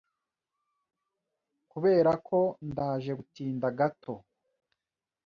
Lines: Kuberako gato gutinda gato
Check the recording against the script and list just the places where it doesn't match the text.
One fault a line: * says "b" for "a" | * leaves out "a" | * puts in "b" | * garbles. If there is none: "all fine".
* says "ndaje" for "gato"